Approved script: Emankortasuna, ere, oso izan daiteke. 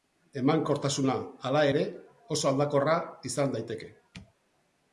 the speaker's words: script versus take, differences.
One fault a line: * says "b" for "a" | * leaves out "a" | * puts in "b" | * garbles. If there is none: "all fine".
* puts in "hala"
* puts in "aldakorra"